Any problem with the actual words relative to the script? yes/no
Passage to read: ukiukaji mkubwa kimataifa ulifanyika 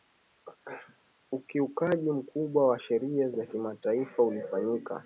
yes